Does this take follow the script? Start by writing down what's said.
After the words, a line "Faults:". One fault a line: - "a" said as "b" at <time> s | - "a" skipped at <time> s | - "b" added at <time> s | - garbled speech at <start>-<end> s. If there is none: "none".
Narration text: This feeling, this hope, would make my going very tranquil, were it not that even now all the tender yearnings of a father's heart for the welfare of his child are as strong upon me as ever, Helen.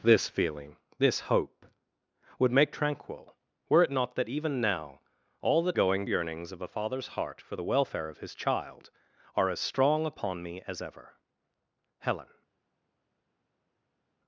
This feeling, this hope, would make tranquil, were it not that even now all the going yearnings of a father's heart for the welfare of his child are as strong upon me as ever, Helen.
Faults:
- "my going very" skipped at 2.7 s
- "tender" said as "going" at 5.7 s